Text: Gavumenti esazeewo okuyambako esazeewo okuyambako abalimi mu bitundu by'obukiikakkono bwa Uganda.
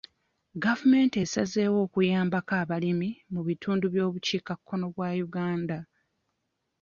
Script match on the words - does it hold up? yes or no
no